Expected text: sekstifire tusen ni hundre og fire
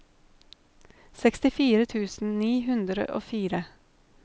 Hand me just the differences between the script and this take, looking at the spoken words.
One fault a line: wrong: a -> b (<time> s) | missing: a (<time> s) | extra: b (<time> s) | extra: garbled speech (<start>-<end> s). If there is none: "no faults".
no faults